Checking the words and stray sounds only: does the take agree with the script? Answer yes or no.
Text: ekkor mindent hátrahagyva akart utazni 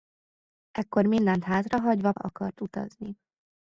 yes